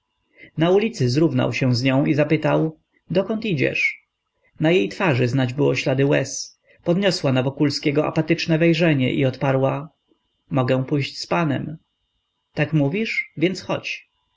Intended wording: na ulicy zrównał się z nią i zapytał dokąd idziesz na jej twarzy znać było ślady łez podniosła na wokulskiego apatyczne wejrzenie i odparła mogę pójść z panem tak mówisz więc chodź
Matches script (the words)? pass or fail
pass